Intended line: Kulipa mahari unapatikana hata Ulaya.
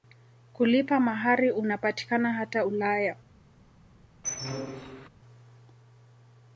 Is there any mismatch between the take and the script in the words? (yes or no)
no